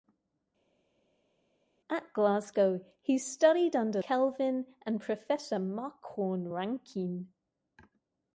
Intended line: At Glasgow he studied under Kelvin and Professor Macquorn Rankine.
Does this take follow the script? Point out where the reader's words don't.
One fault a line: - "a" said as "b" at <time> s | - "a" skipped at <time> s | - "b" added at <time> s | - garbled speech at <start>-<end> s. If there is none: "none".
none